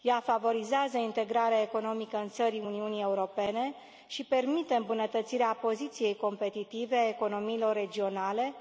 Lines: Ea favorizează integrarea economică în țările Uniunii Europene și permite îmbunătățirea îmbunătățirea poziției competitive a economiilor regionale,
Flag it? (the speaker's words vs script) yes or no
yes